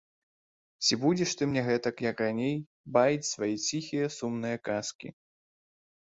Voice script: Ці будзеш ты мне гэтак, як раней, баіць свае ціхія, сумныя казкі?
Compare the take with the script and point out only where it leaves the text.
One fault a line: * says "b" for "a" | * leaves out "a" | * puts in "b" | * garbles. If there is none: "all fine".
all fine